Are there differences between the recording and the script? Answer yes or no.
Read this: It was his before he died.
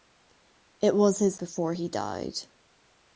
no